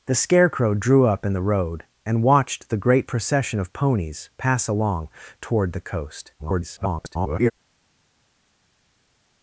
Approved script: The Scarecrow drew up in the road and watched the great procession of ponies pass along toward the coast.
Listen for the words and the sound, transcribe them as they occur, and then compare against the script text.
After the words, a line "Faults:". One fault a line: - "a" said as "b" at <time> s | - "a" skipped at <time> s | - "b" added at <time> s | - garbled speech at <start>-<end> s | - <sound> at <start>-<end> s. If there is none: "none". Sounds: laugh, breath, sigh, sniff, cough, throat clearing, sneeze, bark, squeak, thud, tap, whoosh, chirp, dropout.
The Scarecrow drew up in the road and watched the great procession of ponies pass along toward the coast. [garbled]
Faults:
- garbled speech at 6.4-7.5 s